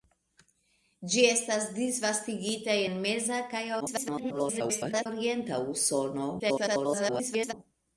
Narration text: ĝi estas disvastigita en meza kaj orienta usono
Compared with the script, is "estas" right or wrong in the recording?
right